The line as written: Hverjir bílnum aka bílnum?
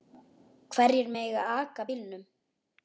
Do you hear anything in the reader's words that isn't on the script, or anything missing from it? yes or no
yes